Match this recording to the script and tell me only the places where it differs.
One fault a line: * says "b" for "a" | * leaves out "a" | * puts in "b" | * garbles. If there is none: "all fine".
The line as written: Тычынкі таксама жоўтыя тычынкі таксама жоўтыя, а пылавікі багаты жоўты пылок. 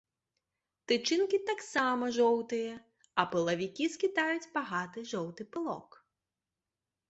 * leaves out "тычынкі таксама жоўтыя"
* puts in "скідаюць"